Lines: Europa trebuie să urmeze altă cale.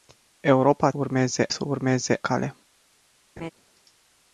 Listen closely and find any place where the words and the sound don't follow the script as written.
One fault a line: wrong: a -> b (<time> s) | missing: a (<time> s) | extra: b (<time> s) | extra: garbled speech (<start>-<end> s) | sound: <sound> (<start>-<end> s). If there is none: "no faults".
wrong: trebuie -> urmeze (0.9 s)
missing: altă (2.2 s)
sound: laugh (3.4-3.5 s)